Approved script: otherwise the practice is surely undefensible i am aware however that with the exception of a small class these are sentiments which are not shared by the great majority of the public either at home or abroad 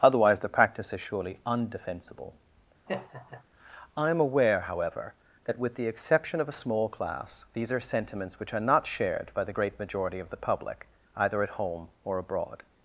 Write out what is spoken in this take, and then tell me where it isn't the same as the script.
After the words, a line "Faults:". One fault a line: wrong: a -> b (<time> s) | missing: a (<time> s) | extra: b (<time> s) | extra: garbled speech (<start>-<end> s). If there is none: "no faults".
otherwise the practice is surely undefensible i am aware however that with the exception of a small class these are sentiments which are not shared by the great majority of the public either at home or abroad
Faults:
no faults